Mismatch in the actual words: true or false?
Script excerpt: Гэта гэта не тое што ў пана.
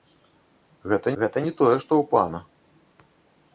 false